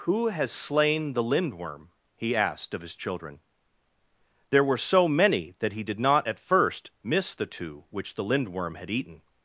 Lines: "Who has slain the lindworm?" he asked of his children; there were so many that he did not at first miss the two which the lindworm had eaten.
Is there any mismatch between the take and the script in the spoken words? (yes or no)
no